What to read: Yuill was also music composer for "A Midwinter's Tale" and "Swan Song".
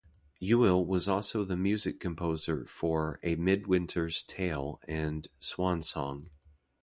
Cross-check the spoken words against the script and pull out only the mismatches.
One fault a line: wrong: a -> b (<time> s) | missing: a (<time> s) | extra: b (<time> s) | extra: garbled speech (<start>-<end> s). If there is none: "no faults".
extra: the (1.4 s)